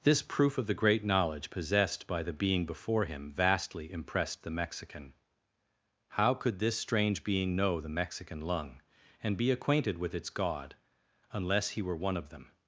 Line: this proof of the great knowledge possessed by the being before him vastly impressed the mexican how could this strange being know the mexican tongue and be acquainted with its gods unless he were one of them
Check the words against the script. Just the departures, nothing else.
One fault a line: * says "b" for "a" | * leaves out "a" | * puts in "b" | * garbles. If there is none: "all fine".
* says "lung" for "tongue"
* says "god" for "gods"